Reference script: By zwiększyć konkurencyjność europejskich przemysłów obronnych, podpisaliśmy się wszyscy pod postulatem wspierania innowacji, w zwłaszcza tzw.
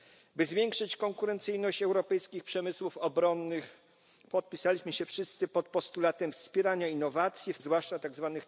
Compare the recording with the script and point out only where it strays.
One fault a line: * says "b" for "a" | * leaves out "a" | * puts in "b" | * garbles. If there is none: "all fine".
all fine